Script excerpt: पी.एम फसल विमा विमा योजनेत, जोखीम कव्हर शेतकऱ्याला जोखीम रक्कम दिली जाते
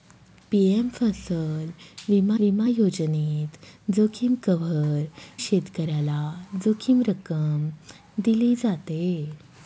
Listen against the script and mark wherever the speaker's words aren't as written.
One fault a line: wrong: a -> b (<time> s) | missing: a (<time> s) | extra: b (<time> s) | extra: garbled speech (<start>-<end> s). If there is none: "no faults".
no faults